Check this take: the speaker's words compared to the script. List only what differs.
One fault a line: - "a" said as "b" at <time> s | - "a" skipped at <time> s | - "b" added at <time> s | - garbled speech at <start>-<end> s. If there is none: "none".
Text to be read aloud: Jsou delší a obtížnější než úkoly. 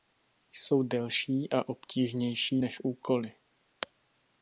none